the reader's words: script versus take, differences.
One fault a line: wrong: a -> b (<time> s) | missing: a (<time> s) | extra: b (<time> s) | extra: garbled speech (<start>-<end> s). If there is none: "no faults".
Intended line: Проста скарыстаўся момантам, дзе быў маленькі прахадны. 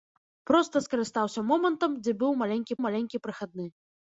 extra: маленькі (2.9 s)